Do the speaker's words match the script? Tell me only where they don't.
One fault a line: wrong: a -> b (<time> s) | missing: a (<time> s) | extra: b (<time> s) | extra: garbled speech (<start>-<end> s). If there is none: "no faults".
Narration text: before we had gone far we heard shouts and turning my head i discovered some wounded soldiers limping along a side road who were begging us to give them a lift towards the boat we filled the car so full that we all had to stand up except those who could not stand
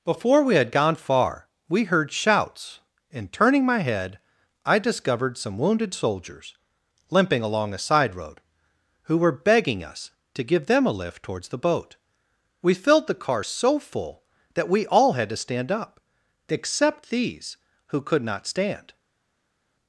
wrong: those -> these (17.1 s)